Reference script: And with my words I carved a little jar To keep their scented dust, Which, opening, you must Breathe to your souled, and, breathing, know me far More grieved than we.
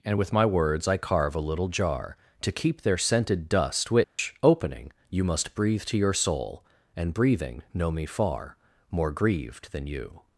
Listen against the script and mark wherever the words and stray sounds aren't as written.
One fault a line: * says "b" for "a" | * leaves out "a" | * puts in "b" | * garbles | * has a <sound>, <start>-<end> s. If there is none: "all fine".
* says "carve" for "carved"
* has a dropout, 4.0-4.2 s
* says "soul" for "souled"
* says "you" for "we"